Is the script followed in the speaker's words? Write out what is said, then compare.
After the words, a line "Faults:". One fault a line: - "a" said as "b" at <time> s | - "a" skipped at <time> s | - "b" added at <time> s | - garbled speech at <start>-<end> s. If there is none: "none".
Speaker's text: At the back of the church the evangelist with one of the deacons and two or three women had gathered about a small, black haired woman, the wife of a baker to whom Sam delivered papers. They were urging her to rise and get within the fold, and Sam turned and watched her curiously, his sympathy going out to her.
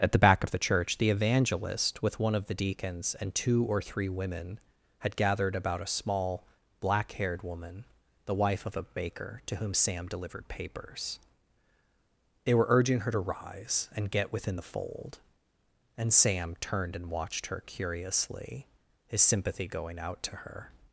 At the back of the church the evangelist with one of the deacons and two or three women had gathered about a small, black haired woman, the wife of a baker to whom Sam delivered papers. They were urging her to rise and get within the fold, and Sam turned and watched her curiously, his sympathy going out to her.
Faults:
none